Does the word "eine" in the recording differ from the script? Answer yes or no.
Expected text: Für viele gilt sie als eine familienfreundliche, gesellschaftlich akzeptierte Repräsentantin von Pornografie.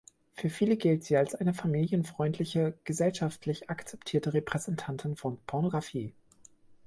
no